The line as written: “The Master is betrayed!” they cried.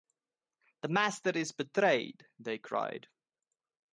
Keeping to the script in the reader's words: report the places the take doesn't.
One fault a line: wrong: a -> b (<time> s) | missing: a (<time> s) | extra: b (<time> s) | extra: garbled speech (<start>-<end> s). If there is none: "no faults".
no faults